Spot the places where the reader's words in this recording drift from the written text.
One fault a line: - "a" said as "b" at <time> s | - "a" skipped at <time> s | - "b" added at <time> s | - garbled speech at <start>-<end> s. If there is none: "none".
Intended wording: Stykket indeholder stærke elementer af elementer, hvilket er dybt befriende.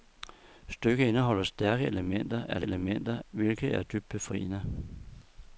none